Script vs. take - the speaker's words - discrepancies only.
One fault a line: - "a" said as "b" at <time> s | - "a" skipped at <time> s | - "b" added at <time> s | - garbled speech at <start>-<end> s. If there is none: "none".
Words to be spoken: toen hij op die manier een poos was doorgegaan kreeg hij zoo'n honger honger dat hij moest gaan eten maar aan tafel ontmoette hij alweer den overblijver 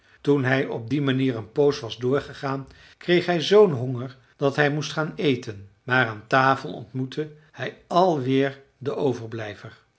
- "honger" skipped at 4.2 s